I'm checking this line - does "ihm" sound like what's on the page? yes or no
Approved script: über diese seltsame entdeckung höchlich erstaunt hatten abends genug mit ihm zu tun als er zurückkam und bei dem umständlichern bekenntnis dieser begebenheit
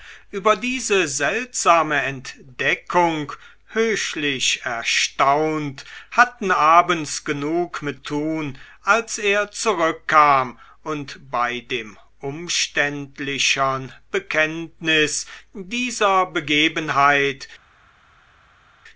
no